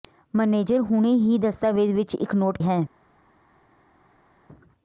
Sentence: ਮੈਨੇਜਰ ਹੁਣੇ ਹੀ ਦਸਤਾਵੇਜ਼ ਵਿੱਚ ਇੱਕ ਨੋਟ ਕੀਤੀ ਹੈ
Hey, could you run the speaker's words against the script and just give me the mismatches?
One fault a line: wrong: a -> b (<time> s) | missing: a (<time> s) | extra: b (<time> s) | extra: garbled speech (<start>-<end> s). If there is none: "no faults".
missing: ਕੀਤੀ (2.6 s)